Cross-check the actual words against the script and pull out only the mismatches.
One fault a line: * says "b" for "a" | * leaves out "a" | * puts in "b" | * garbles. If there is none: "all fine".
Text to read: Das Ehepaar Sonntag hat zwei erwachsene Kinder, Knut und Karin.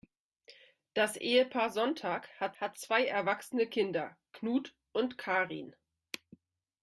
* puts in "hat"